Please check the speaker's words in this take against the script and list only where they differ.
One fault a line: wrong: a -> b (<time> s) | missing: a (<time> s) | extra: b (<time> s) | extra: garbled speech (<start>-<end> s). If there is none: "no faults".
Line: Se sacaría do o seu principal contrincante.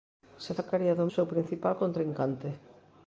no faults